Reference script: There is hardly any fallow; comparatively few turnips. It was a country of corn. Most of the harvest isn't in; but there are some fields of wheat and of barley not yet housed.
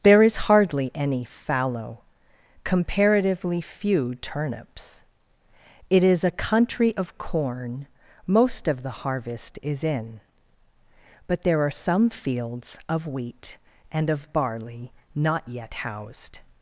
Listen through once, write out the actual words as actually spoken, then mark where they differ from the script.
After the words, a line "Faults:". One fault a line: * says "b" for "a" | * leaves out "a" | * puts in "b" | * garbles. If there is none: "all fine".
There is hardly any fallow; comparatively few turnips. It is a country of corn. Most of the harvest is in; but there are some fields of wheat and of barley not yet housed.
Faults:
* says "is" for "was"
* says "is" for "isn't"